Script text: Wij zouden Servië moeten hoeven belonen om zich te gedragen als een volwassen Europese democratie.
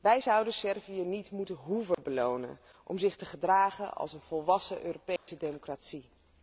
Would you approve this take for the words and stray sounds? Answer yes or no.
no